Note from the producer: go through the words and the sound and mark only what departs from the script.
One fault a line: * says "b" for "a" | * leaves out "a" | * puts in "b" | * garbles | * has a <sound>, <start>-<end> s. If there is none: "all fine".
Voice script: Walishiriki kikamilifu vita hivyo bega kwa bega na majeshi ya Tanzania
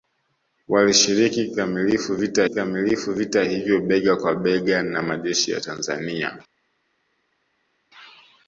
* puts in "kikamilifu vita"